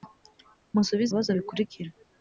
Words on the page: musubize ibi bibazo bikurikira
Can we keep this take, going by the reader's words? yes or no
no